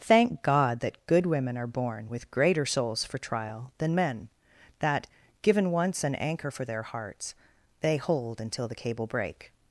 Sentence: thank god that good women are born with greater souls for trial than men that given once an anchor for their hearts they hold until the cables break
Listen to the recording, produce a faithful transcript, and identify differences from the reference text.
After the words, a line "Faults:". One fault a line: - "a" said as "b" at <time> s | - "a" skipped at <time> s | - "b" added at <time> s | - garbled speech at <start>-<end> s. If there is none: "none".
thank god that good women are born with greater souls for trial than men that given once an anchor for their hearts they hold until the cable break
Faults:
- "cables" said as "cable" at 8.7 s